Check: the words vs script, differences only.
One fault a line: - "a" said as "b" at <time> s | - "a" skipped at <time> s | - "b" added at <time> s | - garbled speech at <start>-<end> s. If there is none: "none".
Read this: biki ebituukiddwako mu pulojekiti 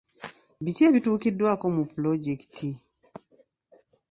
none